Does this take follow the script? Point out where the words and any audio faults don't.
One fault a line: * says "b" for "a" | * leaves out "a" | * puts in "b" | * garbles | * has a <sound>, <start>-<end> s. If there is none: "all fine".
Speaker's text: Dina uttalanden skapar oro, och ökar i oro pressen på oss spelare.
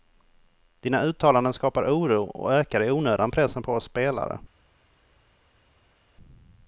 * says "onödan" for "oro"